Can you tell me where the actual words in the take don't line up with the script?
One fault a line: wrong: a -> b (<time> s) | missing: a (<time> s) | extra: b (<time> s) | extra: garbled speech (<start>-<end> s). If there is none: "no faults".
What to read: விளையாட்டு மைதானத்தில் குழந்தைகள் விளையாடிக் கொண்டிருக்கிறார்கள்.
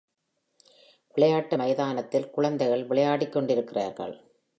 no faults